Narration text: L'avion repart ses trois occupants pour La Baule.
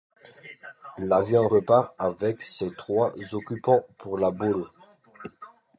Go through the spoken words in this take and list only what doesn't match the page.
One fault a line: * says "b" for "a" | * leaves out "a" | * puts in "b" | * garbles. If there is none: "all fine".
* puts in "avec"